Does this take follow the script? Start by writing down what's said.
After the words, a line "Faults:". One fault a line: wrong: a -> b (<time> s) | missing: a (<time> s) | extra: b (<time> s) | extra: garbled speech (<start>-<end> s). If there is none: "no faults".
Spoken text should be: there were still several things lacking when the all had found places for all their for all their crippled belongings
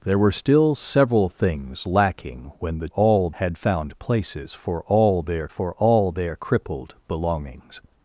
there were still several things lacking when the all had found places for all their for all their crippled belongings
Faults:
no faults